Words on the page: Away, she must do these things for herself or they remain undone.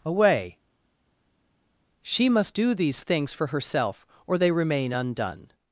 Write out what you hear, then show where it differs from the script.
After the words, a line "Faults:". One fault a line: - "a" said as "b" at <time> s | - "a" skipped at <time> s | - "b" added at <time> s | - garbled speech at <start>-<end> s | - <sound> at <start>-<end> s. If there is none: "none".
Away, she must do these things for herself or they remain undone.
Faults:
none